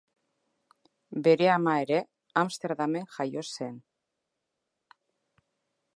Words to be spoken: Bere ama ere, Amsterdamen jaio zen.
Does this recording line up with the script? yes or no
yes